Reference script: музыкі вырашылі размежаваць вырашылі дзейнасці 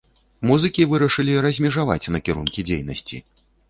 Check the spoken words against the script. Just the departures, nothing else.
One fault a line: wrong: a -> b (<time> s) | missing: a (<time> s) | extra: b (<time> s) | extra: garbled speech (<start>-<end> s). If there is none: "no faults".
wrong: вырашылі -> накірункі (2.2 s)